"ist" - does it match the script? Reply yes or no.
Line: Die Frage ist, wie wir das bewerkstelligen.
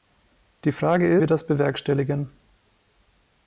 no